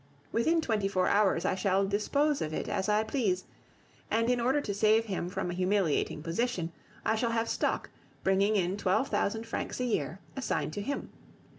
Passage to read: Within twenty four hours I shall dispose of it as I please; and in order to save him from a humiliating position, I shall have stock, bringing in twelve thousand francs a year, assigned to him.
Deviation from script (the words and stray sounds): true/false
false